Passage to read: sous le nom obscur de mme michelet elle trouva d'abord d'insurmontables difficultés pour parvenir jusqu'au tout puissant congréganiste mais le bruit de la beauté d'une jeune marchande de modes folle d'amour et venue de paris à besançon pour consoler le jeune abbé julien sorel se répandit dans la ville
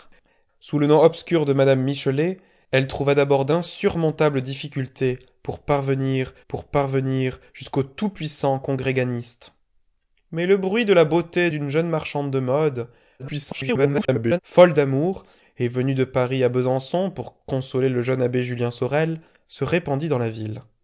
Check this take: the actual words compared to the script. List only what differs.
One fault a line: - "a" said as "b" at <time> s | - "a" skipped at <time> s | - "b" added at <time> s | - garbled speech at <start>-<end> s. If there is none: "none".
- "pour parvenir" added at 6.5 s
- garbled speech at 13.2-14.4 s